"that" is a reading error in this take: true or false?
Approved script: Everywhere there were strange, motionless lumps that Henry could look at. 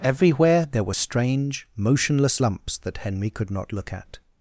false